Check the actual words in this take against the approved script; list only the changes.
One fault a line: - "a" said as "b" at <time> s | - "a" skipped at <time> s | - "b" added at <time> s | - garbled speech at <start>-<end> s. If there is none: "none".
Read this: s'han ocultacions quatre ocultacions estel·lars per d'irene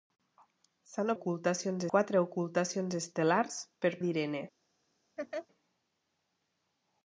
none